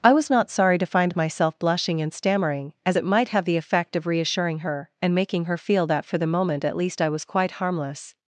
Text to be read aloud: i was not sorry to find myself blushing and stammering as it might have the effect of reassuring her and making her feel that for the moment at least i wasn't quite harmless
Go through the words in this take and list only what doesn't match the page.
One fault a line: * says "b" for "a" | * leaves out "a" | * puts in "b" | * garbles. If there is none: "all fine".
* says "was" for "wasn't"